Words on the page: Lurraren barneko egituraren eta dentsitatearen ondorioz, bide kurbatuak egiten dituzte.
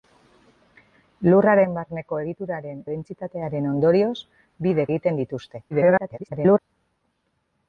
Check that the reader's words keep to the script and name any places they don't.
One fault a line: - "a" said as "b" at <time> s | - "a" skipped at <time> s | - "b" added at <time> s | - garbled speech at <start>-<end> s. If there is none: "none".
- "eta" skipped at 2.8 s
- "kurbatuak" skipped at 4.9 s
- garbled speech at 5.7-6.6 s